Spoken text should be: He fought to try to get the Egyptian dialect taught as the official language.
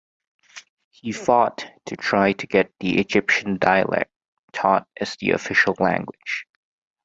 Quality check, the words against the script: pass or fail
pass